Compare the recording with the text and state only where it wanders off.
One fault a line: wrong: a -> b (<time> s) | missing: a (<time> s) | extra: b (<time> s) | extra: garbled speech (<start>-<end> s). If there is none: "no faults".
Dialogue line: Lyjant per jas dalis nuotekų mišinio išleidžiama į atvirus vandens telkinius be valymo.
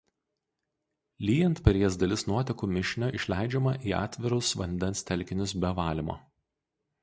no faults